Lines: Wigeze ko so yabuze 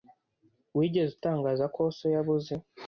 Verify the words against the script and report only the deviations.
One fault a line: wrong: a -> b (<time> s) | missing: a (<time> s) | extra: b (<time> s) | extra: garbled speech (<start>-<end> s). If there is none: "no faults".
extra: utangaza (1.2 s)